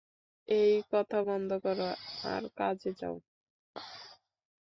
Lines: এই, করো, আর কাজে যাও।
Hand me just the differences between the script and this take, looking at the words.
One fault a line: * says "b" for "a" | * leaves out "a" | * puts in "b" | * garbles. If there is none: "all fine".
* puts in "কথা বন্ধ"